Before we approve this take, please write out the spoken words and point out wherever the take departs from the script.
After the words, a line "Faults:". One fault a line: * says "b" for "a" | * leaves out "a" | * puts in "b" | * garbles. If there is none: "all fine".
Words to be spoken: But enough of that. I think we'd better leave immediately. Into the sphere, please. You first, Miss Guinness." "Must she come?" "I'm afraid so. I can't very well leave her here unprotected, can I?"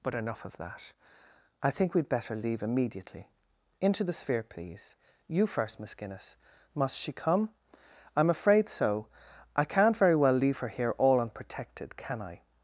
But enough of that. I think we'd better leave immediately. Into the sphere, please. You first, Miss Guinness." "Must she come?" "I'm afraid so. I can't very well leave her here all unprotected, can I?"
Faults:
* puts in "all"